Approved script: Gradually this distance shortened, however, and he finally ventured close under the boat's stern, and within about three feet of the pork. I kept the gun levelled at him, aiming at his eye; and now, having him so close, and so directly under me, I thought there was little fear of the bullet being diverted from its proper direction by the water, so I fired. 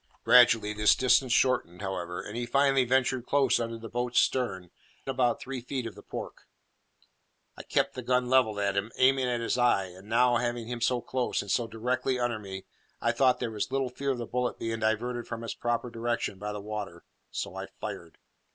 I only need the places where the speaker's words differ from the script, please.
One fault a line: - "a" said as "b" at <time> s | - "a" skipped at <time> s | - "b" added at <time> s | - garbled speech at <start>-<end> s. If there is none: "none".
- "and within" skipped at 4.7 s